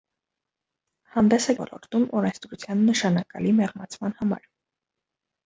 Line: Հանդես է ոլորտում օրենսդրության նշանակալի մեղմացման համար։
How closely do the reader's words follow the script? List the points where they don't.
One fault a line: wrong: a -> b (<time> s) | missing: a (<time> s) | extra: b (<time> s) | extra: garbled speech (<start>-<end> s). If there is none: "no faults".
no faults